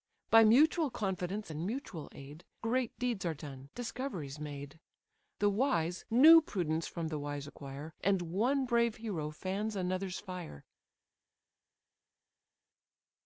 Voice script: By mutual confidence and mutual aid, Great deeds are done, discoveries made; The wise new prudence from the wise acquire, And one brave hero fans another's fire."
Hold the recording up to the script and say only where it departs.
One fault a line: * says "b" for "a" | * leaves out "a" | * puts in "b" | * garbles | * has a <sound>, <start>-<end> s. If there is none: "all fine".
all fine